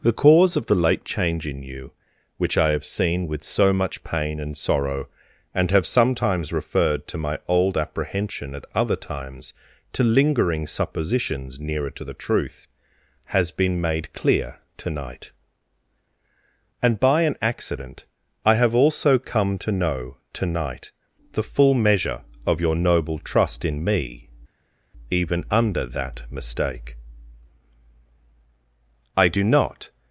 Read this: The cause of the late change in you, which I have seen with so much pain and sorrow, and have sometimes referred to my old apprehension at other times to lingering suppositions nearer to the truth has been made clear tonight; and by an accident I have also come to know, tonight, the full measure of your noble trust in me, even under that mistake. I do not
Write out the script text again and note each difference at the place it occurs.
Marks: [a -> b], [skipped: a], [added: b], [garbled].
The cause of the late change in you, which I have seen with so much pain and sorrow, and have sometimes referred to my old apprehension at other times to lingering suppositions nearer to the truth has been made clear tonight; and by an accident I have also come to know, tonight, the full measure of your noble trust in me, even under that mistake. I do not